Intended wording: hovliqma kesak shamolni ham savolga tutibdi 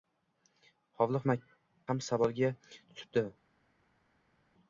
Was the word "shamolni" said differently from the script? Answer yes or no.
yes